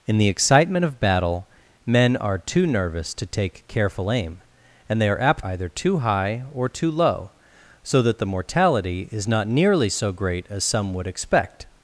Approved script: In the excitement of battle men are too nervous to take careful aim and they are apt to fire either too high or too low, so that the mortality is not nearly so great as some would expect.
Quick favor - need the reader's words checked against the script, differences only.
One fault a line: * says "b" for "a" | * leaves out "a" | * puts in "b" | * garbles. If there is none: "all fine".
* leaves out "to fire"